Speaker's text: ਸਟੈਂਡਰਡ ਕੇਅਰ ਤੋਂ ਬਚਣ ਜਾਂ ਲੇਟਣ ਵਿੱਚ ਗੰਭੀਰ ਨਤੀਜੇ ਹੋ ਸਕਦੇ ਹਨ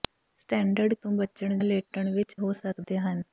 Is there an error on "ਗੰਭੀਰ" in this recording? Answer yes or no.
yes